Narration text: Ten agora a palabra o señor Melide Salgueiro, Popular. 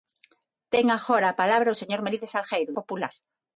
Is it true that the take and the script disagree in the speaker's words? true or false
false